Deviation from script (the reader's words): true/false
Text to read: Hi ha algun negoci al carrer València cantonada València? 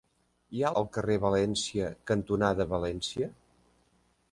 true